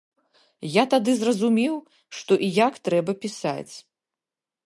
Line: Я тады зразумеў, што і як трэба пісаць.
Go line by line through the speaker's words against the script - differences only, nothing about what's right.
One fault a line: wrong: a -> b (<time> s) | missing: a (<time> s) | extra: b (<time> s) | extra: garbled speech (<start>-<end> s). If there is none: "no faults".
no faults